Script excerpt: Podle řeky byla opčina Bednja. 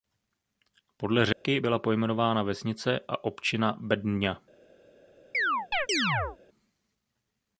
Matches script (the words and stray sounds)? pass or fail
fail